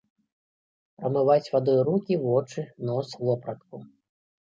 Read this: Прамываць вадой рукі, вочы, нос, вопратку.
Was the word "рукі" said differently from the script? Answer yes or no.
no